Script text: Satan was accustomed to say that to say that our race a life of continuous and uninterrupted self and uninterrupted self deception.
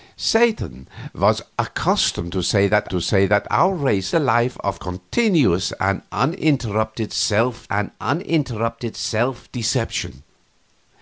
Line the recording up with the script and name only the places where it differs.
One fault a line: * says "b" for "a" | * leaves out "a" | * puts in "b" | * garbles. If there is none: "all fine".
all fine